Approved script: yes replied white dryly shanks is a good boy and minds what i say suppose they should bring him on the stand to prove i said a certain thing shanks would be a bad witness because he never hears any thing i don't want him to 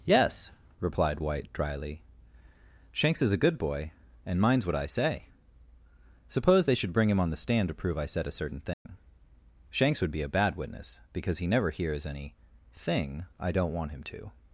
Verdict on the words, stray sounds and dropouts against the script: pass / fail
fail